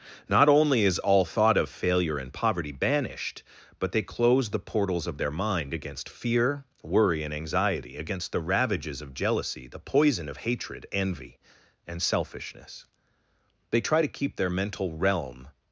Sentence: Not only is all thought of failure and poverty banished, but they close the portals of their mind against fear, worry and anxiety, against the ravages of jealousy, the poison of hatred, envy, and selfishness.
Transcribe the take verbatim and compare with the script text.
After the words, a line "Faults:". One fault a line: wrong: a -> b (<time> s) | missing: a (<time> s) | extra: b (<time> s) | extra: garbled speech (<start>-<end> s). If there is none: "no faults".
Not only is all thought of failure and poverty banished, but they close the portals of their mind against fear, worry and anxiety, against the ravages of jealousy, the poison of hatred, envy, and selfishness. They try to keep their mental realm
Faults:
extra: They try to keep their mental realm (13.7 s)